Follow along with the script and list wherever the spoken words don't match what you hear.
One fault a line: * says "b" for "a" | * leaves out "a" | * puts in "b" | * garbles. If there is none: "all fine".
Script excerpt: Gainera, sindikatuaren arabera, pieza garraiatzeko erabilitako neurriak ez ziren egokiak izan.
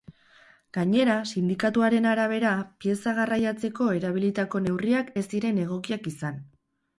all fine